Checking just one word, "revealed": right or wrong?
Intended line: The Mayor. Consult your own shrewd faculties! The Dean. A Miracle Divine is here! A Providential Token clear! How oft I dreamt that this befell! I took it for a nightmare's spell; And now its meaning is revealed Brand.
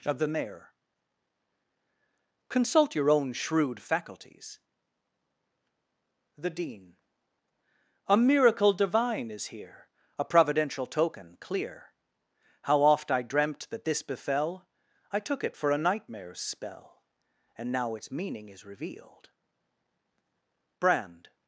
right